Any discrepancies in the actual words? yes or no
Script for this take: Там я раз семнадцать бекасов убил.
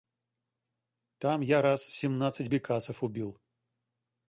no